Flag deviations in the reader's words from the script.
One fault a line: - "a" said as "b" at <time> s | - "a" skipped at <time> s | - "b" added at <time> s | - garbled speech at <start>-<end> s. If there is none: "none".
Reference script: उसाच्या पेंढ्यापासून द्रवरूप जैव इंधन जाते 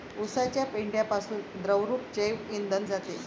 none